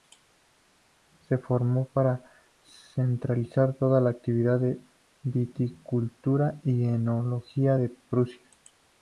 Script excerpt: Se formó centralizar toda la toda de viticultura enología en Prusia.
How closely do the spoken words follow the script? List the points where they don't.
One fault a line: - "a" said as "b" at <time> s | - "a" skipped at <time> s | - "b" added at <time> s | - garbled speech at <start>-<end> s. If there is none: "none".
- "para" added at 1.9 s
- "toda" said as "actividad" at 4.1 s
- "y" added at 6.6 s